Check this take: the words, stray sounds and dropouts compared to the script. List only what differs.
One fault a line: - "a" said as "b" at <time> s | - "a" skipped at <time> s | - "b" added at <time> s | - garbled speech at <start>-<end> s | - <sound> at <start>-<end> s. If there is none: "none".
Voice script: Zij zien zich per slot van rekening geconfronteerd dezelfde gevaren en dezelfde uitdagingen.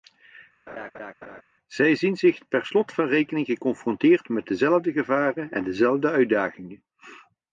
- laugh at 0.7-1.4 s
- "met" added at 4.3 s